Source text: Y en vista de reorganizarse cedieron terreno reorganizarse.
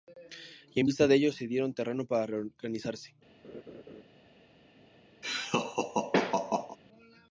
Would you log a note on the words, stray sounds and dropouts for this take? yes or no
yes